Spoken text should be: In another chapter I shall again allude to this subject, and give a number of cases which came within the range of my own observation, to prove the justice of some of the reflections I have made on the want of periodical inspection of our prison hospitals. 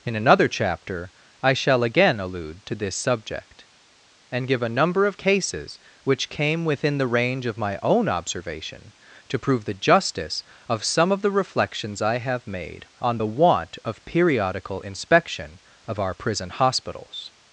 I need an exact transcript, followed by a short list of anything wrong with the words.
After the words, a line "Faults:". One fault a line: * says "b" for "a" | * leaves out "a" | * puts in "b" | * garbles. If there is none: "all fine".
In another chapter I shall again allude to this subject, and give a number of cases which came within the range of my own observation, to prove the justice of some of the reflections I have made on the want of periodical inspection of our prison hospitals.
Faults:
all fine